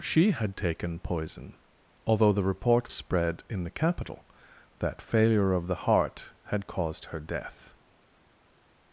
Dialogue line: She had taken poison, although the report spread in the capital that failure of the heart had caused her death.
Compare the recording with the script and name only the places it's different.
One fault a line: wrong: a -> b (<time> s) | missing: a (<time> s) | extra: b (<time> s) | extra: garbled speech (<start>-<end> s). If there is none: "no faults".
no faults